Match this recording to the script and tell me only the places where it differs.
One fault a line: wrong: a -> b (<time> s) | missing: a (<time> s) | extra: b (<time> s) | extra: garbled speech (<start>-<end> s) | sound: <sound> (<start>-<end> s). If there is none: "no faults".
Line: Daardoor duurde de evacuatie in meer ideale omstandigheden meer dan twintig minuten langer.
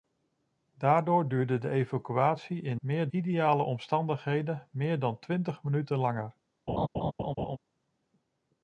sound: laugh (6.7-7.6 s)